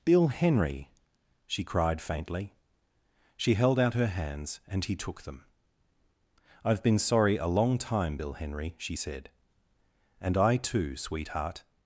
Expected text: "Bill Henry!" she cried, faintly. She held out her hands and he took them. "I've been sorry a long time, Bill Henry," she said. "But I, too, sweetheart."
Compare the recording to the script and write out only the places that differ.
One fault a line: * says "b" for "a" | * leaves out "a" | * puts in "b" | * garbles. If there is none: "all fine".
* says "And" for "But"